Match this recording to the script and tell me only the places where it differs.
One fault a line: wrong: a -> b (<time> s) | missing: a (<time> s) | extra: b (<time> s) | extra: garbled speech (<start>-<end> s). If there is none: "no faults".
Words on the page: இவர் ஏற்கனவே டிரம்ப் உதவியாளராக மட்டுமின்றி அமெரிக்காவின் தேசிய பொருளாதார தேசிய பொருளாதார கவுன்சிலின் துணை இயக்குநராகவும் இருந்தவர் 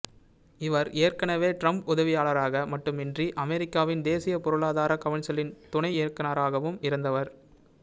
missing: தேசிய பொருளாதார (5.0 s)